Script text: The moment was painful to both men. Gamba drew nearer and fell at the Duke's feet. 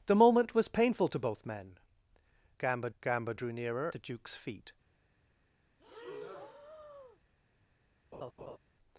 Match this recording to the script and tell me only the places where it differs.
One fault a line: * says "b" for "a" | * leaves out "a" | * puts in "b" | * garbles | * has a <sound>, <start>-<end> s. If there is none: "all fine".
* puts in "gamba"
* leaves out "and fell at"
* has a breath, 5.8-7.2 s
* has a laugh, 8.1-8.6 s